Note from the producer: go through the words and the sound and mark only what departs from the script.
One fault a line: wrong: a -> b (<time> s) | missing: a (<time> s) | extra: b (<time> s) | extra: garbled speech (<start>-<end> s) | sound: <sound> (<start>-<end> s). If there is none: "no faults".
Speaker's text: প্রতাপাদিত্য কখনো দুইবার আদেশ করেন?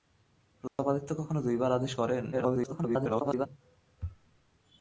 sound: dropout (0.7-0.8 s)
extra: garbled speech (2.3-3.5 s)